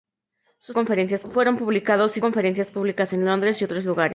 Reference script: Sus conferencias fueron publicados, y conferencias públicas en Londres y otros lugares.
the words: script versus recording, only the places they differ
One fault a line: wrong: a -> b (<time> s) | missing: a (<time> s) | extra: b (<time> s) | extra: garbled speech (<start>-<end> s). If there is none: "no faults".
no faults